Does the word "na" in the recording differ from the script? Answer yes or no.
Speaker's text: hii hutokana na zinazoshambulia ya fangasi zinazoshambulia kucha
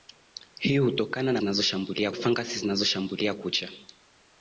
no